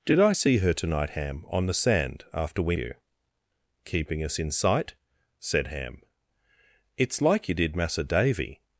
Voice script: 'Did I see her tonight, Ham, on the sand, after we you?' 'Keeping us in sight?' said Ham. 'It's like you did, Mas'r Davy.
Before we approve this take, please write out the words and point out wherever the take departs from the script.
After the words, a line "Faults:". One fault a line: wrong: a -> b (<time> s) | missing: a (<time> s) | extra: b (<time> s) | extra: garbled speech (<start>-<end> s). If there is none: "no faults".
'Did I see her tonight, Ham, on the sand, after we you?' 'Keeping us in sight?' said Ham. 'It's like you did, Mas'r Davy.
Faults:
no faults